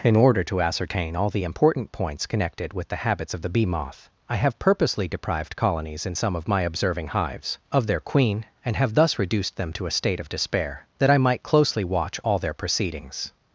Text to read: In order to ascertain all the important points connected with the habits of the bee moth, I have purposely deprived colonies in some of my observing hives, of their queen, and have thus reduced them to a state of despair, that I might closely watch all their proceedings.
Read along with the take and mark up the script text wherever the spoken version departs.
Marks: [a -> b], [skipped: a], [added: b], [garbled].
In order to ascertain all the important points connected with the habits of the bee moth, I have purposely deprived colonies in some of my observing hives, of their queen, and have thus reduced them to a state of despair, that I might closely watch all their proceedings.